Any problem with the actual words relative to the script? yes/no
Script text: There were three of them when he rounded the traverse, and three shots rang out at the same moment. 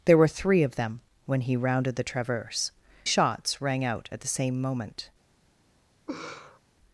yes